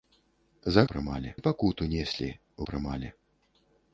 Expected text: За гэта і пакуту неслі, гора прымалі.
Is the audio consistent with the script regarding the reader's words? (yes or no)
no